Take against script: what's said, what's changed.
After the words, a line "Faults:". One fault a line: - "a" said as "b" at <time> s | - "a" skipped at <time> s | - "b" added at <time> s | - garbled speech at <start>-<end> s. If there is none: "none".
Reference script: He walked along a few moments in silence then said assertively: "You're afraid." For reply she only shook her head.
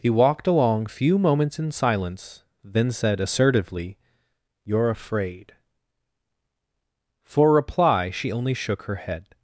He walked along few moments in silence then said assertively: "You're afraid." For reply she only shook her head.
Faults:
- "a" skipped at 0.9 s